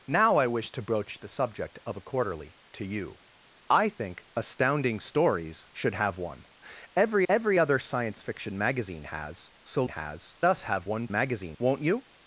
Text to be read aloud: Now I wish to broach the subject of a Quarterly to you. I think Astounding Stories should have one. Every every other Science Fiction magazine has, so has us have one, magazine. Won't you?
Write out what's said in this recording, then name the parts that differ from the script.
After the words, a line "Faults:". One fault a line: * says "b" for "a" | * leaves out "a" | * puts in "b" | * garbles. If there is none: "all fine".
Now I wish to broach the subject of a Quarterly to you. I think Astounding Stories should have one. Every every other Science Fiction magazine has, so has us have one, magazine. Won't you?
Faults:
all fine